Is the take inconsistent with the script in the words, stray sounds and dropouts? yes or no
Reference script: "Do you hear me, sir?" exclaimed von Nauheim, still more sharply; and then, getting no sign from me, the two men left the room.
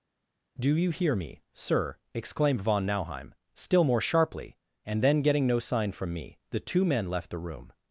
no